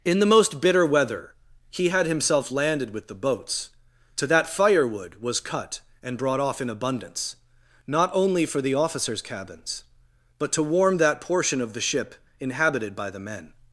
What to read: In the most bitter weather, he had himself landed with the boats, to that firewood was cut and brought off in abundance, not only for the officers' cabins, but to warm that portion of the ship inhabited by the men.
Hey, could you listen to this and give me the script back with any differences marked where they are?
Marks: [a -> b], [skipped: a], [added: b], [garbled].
In the most bitter weather, he had himself landed with the boats, to that firewood was cut and brought off in abundance, not only for the officers' cabins, but to warm that portion of the ship inhabited by the men.